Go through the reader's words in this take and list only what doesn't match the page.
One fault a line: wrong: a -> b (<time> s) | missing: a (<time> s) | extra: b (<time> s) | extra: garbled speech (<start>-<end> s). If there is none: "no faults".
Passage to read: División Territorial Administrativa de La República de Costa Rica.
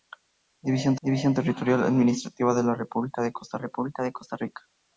extra: división (1.0 s)
extra: República de Costa (3.6 s)